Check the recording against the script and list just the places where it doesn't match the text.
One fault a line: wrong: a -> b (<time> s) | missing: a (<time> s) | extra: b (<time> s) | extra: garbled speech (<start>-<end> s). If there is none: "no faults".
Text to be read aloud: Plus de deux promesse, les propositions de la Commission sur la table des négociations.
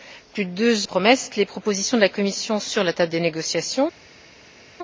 no faults